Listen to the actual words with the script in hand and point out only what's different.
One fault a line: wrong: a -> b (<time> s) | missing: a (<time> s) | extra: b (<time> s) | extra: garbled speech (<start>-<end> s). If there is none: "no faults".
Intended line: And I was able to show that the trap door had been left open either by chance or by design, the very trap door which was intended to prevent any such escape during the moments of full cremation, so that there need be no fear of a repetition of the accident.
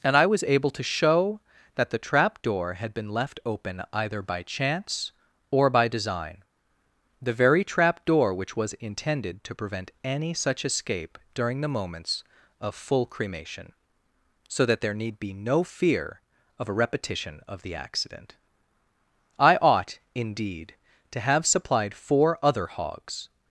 extra: I ought indeed to have supplied four other hogs (19.4 s)